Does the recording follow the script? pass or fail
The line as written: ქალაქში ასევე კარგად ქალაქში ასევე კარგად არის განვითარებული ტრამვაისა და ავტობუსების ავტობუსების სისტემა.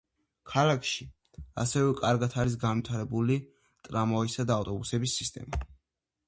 fail